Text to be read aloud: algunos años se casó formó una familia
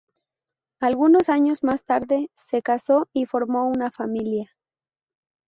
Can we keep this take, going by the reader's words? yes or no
no